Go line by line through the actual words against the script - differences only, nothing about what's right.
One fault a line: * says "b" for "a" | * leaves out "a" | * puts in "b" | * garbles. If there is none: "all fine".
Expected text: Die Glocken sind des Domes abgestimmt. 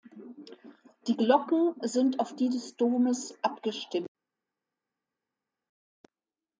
* puts in "auf die"